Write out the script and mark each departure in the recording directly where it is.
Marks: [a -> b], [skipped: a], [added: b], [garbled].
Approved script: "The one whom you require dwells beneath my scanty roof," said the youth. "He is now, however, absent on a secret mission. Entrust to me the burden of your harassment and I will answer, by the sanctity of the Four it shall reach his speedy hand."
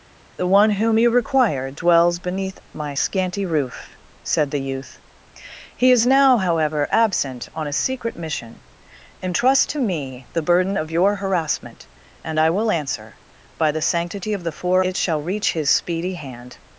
"The one whom you require dwells beneath my scanty roof," said the youth. "He is now, however, absent on a secret mission. Entrust to me the burden of your harassment and I will answer, by the sanctity of the Four it shall reach his speedy hand."